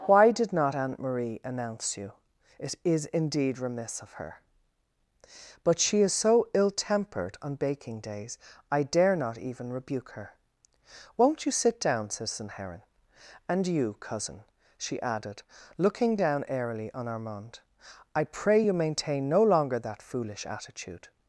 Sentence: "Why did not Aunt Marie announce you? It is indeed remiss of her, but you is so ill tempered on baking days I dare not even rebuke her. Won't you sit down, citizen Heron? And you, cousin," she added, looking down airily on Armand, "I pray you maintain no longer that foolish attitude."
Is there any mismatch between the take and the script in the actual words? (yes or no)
yes